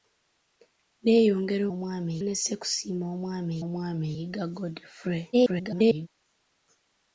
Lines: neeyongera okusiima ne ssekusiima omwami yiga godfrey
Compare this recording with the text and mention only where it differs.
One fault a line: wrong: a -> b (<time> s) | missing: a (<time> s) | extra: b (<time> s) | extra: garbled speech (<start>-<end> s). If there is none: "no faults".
wrong: okusiima -> omwami (1.7 s)
extra: omwami (3.6 s)
extra: garbled speech (5.3-6.1 s)